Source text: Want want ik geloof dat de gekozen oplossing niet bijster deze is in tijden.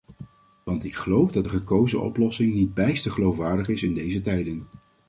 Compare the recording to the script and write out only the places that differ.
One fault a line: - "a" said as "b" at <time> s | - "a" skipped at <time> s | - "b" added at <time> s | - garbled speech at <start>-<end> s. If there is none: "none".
- "want" skipped at 0.8 s
- "deze" said as "geloofwaardig" at 3.1 s
- "deze" added at 3.9 s